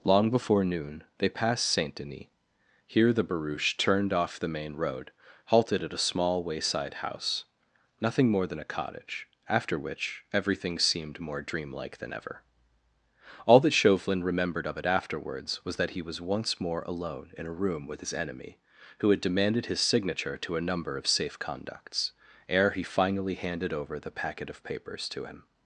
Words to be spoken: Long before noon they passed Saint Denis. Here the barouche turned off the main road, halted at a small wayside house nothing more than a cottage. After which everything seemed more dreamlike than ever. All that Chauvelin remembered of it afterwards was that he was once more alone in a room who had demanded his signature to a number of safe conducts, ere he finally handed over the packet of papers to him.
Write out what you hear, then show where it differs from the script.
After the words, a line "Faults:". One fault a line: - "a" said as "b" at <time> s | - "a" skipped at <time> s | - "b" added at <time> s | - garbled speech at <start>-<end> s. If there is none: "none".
Long before noon they passed Saint Denis. Here the barouche turned off the main road, halted at a small wayside house nothing more than a cottage. After which everything seemed more dreamlike than ever. All that Chauvelin remembered of it afterwards was that he was once more alone in a room with his enemy, who had demanded his signature to a number of safe conducts, ere he finally handed over the packet of papers to him.
Faults:
- "with his enemy" added at 17.9 s